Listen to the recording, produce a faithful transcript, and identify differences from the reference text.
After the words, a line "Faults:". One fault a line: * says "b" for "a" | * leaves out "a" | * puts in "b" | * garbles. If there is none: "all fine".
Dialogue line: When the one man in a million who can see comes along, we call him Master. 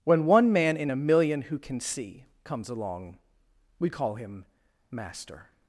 When one man in a million who can see comes along, we call him Master.
Faults:
* leaves out "the"